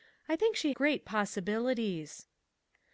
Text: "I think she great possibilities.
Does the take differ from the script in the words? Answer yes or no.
no